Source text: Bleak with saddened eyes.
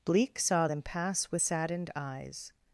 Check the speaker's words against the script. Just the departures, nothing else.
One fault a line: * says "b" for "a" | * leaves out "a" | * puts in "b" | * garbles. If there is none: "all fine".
* puts in "saw them pass"